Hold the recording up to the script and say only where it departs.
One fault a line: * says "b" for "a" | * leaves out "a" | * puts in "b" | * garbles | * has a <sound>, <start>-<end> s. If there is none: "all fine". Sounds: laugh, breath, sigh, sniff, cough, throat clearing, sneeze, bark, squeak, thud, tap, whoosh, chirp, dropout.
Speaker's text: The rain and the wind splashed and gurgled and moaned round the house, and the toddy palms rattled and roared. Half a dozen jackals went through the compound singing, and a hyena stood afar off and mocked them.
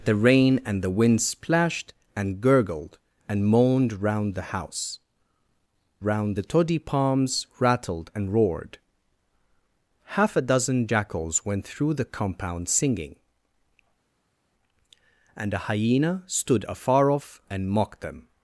* says "round" for "and"